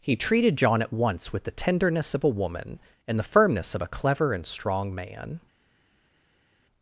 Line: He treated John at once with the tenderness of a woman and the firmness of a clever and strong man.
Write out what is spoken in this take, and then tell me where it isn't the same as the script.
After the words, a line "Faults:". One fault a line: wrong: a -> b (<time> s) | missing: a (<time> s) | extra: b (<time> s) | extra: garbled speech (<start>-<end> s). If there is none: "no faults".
He treated John at once with the tenderness of a woman and the firmness of a clever and strong man.
Faults:
no faults